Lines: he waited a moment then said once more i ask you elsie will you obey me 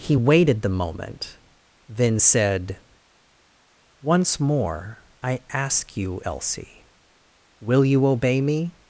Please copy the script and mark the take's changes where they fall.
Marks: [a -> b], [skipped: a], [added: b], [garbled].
he waited [a -> the] moment then said once more i ask you elsie will you obey me